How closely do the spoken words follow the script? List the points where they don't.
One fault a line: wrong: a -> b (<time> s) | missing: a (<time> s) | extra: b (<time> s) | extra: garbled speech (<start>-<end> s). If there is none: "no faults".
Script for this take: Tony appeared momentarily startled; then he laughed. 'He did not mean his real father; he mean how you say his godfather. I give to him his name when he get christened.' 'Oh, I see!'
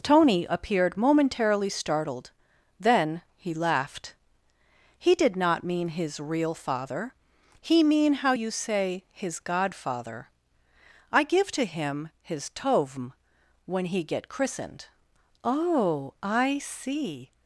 wrong: name -> tovm (12.5 s)